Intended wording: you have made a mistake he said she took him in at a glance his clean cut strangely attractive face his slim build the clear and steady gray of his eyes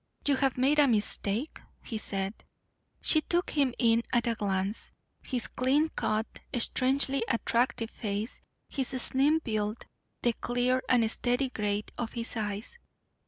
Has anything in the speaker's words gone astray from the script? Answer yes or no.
no